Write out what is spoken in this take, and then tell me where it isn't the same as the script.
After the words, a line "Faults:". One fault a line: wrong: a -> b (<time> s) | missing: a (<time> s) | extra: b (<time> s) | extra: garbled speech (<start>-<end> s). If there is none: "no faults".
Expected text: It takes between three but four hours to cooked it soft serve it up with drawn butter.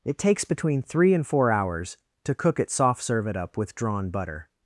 It takes between three and four hours to cook it soft serve it up with drawn butter.
Faults:
wrong: but -> and (1.1 s)
wrong: cooked -> cook (2.4 s)